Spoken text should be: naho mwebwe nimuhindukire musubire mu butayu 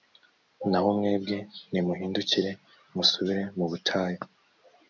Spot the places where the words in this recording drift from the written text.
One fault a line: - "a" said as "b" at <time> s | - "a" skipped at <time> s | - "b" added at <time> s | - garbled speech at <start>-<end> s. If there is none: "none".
none